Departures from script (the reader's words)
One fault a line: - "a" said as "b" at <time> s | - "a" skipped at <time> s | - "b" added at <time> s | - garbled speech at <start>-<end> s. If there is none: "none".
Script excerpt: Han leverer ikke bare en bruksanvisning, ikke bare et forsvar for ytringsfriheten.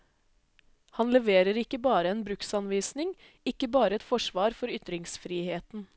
none